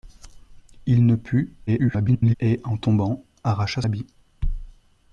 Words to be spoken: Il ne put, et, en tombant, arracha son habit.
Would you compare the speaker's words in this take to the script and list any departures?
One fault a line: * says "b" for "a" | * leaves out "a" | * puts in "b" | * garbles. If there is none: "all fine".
* garbles
* leaves out "son"